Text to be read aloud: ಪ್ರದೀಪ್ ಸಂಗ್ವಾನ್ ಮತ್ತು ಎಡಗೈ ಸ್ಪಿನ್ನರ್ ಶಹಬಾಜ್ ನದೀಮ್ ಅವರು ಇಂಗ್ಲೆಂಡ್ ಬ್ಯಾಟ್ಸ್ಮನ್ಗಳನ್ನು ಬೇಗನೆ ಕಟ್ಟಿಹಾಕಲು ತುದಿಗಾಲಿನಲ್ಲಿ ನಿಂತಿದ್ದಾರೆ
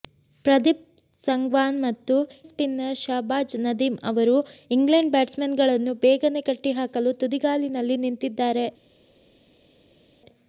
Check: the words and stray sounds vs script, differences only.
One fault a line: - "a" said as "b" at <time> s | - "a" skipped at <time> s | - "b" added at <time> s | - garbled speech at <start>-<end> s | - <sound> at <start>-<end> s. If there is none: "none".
- "ಎಡಗೈ" skipped at 2.1 s